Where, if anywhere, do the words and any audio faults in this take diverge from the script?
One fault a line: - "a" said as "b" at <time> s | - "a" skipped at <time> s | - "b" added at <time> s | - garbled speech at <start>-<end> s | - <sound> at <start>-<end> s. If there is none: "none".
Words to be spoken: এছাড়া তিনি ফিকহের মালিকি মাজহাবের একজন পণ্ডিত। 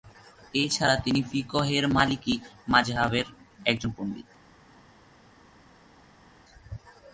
none